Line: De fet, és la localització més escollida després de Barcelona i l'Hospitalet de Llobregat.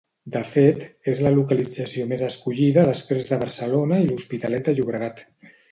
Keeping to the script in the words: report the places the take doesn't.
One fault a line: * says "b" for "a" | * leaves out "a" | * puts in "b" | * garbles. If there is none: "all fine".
all fine